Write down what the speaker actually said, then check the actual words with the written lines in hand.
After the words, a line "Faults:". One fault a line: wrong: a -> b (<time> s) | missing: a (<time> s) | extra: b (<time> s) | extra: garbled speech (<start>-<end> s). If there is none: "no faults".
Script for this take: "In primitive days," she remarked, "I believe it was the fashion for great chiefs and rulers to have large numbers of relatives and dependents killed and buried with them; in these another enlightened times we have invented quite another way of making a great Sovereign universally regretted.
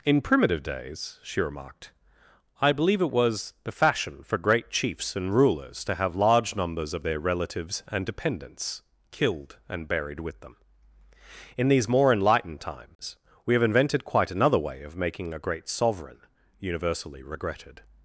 "In primitive days," she remarked, "I believe it was the fashion for great chiefs and rulers to have large numbers of their relatives and dependents killed and buried with them; in these more enlightened times we have invented quite another way of making a great Sovereign universally regretted.
Faults:
extra: their (7.0 s)
wrong: another -> more (11.9 s)